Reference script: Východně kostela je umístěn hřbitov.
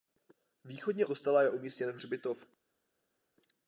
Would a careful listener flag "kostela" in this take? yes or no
no